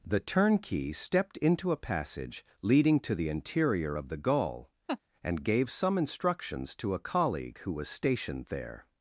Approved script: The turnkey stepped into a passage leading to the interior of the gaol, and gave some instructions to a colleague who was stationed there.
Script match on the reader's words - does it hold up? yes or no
yes